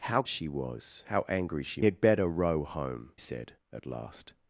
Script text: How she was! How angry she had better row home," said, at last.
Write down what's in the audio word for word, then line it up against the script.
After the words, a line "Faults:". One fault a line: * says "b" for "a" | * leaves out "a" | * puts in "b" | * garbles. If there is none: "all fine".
How she was! How angry she had better row home," said, at last.
Faults:
all fine